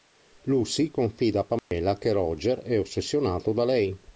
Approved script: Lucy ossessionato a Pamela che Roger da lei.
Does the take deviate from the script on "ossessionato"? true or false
true